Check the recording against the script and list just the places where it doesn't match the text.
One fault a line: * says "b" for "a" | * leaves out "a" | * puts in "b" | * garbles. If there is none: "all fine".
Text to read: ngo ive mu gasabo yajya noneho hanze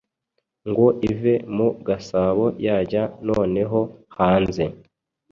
all fine